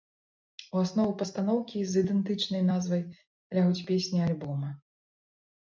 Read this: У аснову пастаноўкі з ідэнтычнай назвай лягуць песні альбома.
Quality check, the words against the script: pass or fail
pass